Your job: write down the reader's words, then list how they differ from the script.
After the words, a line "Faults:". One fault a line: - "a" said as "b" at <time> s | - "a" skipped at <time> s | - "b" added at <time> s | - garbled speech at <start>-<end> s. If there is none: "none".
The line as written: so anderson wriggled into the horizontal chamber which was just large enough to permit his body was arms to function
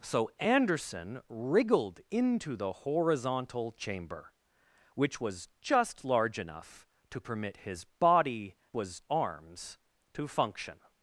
so anderson wriggled into the horizontal chamber which was just large enough to permit his body was arms to function
Faults:
none